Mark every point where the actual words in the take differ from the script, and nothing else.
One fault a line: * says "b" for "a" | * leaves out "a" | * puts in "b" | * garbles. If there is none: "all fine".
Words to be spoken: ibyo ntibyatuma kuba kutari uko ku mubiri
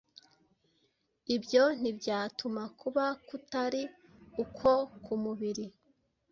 all fine